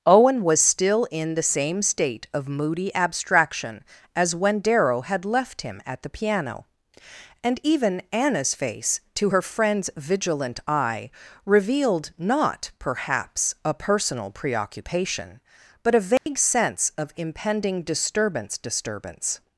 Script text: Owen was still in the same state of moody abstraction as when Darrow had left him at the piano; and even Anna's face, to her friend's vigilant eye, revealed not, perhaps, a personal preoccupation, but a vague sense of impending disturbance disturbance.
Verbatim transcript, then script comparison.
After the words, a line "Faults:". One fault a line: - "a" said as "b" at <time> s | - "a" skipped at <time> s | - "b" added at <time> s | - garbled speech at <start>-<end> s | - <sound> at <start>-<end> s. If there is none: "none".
Owen was still in the same state of moody abstraction as when Darrow had left him at the piano; and even Anna's face, to her friend's vigilant eye, revealed not, perhaps, a personal preoccupation, but a vague sense of impending disturbance disturbance.
Faults:
- dropout at 16.2-16.3 s